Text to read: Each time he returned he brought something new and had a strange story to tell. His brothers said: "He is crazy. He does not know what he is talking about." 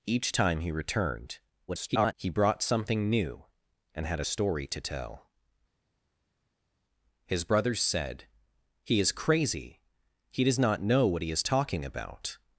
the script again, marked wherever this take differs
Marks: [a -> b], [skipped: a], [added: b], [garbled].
Each time he returned [garbled] he brought something new and had a [skipped: strange] story to tell. His brothers said: "He is crazy. He does not know what he is talking about."